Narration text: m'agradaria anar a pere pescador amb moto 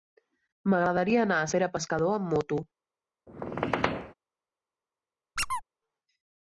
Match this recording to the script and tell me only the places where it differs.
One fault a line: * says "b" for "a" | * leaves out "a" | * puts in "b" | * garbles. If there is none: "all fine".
all fine